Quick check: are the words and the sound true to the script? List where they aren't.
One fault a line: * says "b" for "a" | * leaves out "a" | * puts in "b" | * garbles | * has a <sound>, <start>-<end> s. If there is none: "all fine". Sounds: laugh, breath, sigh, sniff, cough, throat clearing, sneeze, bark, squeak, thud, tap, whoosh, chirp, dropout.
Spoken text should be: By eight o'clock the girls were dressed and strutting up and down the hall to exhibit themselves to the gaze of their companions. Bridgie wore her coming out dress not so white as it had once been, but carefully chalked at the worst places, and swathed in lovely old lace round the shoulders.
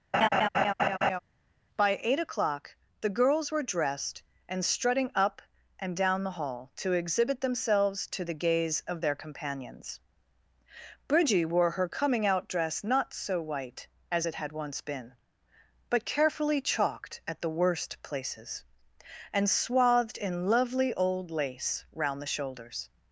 * has a laugh, 0.1-1.2 s